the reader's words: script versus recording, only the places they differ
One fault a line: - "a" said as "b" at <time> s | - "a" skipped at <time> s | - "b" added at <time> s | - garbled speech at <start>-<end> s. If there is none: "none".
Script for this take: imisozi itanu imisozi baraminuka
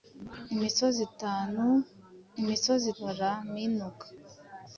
none